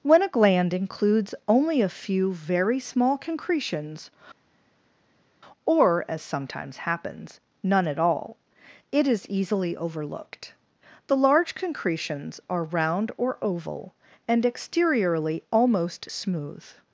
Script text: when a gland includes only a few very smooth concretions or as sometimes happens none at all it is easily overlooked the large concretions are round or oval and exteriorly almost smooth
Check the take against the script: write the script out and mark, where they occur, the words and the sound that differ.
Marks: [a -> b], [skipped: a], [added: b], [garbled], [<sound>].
when a gland includes only a few very [smooth -> small] concretions or as sometimes happens none at all it is easily overlooked the large concretions are round or oval and exteriorly almost smooth